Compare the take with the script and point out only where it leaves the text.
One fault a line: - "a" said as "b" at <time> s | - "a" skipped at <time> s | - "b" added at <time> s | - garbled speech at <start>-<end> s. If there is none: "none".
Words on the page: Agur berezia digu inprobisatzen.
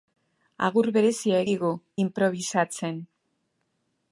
none